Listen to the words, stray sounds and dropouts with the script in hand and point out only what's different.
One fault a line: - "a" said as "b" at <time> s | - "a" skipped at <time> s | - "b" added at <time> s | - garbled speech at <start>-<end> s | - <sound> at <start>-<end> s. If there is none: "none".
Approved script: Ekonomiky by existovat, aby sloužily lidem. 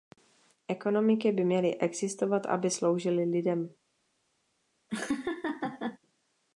- "měly" added at 1.4 s
- laugh at 4.9-6.0 s